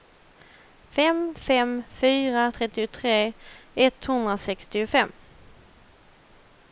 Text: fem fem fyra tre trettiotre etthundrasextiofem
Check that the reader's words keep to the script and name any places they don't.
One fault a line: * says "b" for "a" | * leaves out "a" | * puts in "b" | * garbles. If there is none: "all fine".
* leaves out "tre"